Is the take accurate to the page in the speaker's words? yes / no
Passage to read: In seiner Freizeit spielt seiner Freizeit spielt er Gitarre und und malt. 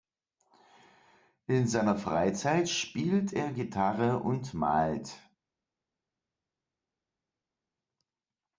no